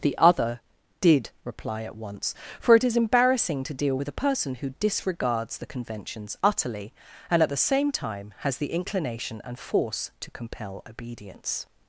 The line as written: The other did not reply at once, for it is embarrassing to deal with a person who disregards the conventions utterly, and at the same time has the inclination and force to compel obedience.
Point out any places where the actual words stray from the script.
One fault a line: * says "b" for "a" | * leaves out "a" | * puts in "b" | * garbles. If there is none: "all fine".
* leaves out "not"